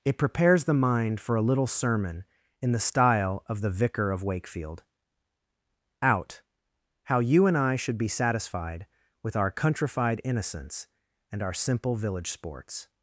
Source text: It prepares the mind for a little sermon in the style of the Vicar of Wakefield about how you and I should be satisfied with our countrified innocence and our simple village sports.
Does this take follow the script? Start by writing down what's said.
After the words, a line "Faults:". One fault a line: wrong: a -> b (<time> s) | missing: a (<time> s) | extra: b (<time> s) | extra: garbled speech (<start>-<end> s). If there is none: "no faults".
It prepares the mind for a little sermon in the style of the Vicar of Wakefield out how you and I should be satisfied with our countrified innocence and our simple village sports.
Faults:
wrong: about -> out (6.0 s)